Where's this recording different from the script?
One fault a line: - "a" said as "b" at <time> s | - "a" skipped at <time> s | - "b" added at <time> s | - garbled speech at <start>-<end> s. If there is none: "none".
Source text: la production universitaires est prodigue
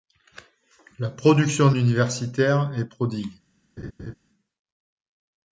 none